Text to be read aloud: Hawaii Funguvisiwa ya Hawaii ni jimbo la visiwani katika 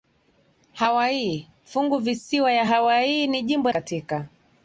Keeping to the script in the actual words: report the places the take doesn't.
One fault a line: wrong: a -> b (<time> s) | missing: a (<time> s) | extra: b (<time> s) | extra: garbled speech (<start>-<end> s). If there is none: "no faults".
missing: la visiwani (3.7 s)